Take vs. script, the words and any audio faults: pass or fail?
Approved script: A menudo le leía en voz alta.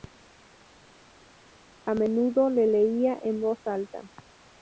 pass